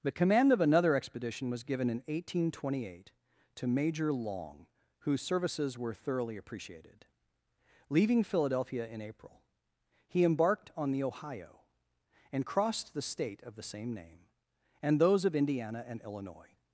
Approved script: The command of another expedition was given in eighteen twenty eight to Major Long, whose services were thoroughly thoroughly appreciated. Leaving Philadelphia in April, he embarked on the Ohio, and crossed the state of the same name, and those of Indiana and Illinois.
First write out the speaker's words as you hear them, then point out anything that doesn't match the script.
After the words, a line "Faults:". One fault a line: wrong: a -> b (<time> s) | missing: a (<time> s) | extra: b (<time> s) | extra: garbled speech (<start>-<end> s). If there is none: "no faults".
The command of another expedition was given in eighteen twenty eight to Major Long, whose services were thoroughly appreciated. Leaving Philadelphia in April, he embarked on the Ohio, and crossed the state of the same name, and those of Indiana and Illinois.
Faults:
missing: thoroughly (6.4 s)